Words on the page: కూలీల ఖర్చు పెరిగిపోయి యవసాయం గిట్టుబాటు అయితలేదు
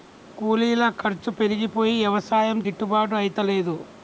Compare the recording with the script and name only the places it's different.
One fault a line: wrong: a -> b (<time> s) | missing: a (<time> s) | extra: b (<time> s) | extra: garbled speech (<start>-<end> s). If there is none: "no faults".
no faults